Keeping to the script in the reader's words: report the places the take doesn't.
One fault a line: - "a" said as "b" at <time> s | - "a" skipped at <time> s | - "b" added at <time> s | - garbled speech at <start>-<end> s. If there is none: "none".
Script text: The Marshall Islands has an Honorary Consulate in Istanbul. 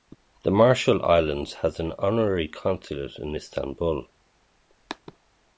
none